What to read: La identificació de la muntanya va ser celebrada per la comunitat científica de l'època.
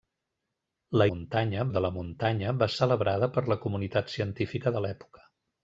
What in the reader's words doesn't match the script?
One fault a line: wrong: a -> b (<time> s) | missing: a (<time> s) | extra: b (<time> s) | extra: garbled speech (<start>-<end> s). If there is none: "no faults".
wrong: identificació -> muntanya (1.1 s)
missing: ser (2.7 s)